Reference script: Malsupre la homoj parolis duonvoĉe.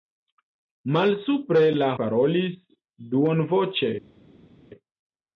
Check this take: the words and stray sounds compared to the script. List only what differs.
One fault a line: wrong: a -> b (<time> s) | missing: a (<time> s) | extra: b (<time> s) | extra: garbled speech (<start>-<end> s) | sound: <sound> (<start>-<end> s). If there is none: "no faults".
missing: homoj (1.9 s)